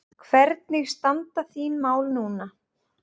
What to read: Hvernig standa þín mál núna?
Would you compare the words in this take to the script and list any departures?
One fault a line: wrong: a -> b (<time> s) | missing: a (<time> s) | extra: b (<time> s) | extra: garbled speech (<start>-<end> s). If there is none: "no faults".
no faults